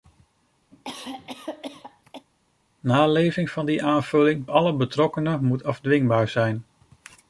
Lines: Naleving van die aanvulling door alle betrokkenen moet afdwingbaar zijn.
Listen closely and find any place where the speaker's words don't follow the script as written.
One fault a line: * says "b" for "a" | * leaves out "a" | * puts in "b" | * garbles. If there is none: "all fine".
* leaves out "door"